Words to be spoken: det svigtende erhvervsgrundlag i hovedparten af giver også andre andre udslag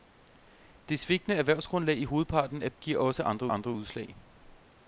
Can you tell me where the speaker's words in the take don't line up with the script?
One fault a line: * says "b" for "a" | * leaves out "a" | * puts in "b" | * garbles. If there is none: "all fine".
all fine